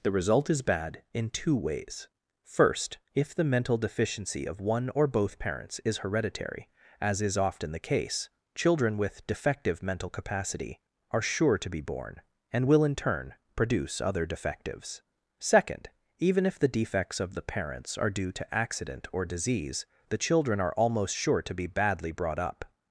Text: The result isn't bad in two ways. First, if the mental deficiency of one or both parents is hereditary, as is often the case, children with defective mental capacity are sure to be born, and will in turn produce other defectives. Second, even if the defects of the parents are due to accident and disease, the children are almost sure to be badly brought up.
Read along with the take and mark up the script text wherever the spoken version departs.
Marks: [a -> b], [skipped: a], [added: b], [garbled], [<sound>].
The result [isn't -> is] bad in two ways. First, if the mental deficiency of one or both parents is hereditary, as is often the case, children with defective mental capacity are sure to be born, and will in turn produce other defectives. Second, even if the defects of the parents are due to accident [and -> or] disease, the children are almost sure to be badly brought up.